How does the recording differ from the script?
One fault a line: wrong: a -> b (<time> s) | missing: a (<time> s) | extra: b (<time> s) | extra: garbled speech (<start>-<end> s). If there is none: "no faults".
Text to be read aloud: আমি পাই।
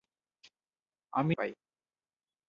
no faults